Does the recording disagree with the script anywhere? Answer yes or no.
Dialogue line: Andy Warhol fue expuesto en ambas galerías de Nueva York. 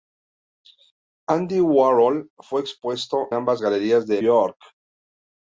yes